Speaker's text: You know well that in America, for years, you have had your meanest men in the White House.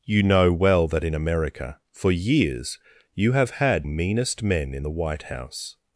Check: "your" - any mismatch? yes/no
yes